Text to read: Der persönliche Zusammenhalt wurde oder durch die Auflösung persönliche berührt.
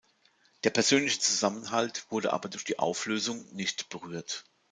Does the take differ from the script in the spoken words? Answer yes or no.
yes